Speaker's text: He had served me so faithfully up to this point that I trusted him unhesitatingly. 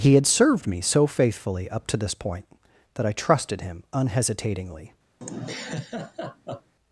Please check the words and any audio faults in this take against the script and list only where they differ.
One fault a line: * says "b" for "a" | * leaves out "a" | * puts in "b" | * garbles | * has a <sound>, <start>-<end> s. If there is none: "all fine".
* has a laugh, 5.2-6.7 s